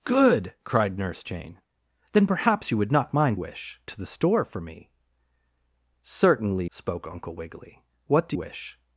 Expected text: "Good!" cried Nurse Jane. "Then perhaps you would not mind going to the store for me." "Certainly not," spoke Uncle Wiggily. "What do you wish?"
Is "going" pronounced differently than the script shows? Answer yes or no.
yes